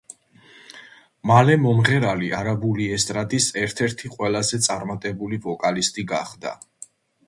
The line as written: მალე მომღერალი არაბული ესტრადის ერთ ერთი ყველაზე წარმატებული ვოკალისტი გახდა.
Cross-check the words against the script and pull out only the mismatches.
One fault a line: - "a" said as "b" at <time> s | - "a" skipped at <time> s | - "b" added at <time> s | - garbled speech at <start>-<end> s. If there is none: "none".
none